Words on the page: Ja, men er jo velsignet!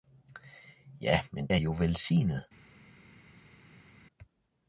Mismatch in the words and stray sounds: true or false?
false